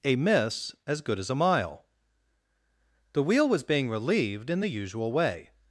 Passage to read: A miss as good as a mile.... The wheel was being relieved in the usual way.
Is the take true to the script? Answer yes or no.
yes